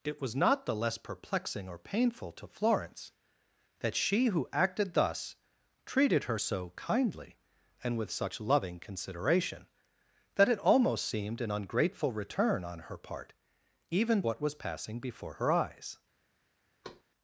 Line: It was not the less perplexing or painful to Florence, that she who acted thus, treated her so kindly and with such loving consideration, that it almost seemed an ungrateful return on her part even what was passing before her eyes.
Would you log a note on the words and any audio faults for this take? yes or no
yes